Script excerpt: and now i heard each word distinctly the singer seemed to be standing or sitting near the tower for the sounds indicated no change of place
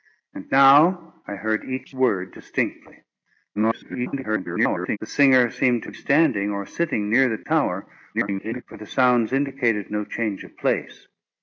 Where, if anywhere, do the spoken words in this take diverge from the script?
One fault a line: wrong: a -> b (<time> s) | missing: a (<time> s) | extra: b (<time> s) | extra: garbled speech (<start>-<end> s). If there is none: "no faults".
extra: garbled speech (3.6-5.0 s)
missing: be (5.9 s)
extra: garbled speech (8.1-8.6 s)